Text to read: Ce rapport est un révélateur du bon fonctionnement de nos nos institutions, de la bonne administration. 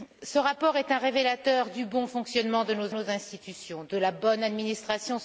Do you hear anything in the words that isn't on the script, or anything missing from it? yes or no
no